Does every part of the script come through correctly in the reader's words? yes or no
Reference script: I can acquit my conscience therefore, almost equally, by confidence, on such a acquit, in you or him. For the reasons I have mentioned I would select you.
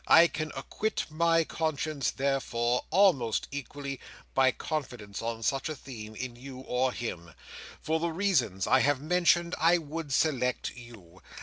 no